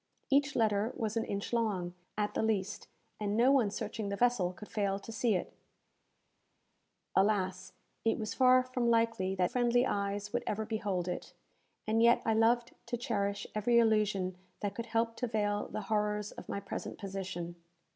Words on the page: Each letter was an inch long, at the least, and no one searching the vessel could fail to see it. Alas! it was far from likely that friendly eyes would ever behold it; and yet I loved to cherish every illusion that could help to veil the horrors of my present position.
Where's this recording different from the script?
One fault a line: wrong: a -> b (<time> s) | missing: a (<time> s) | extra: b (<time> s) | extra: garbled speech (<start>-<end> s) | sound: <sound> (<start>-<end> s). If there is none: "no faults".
no faults